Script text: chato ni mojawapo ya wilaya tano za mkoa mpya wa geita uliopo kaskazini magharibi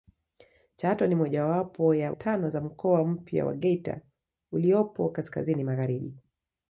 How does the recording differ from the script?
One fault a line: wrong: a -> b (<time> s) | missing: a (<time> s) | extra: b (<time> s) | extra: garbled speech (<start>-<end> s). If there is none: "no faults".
missing: wilaya (2.1 s)